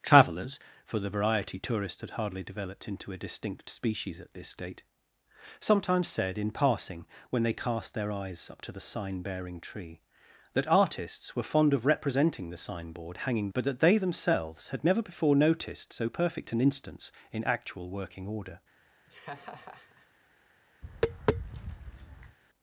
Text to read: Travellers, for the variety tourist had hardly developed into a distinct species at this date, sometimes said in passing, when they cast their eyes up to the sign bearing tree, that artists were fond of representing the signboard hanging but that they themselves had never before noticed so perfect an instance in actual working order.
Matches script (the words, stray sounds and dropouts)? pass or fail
fail